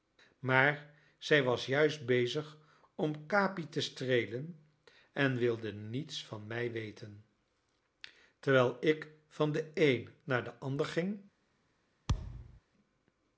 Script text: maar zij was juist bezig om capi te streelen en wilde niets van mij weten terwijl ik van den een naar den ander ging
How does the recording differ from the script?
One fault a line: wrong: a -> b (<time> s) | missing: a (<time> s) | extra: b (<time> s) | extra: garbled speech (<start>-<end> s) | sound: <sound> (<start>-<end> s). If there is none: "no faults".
sound: thud (12.1-12.6 s)